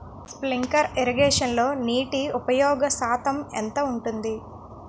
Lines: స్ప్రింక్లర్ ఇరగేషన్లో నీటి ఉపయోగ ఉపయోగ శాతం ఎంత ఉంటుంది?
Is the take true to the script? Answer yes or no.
no